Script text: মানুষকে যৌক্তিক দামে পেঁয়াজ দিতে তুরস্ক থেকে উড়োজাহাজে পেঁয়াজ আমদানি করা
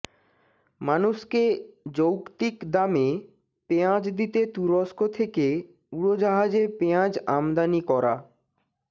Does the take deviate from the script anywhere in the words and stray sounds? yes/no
no